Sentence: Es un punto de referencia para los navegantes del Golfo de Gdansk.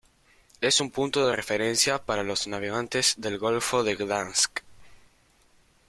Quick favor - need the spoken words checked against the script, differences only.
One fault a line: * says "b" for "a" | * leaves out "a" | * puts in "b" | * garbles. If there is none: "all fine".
all fine